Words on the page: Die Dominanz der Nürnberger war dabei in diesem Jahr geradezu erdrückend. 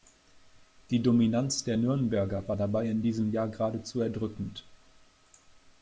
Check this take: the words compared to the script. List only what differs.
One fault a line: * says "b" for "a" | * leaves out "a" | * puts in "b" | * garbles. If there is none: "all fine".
all fine